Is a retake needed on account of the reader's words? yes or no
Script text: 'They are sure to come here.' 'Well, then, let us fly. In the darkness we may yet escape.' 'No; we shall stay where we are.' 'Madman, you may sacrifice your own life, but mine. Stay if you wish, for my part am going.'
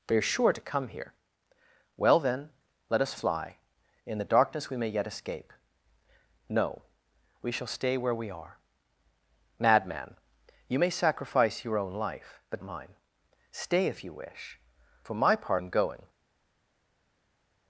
no